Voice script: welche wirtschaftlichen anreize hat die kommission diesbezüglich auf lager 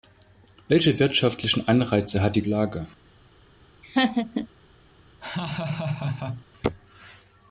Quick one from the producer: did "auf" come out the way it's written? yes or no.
no